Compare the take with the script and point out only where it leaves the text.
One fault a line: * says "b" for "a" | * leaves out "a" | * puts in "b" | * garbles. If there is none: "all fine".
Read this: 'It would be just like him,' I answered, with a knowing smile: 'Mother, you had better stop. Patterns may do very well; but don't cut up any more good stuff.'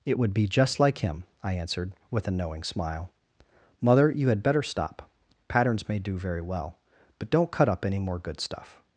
all fine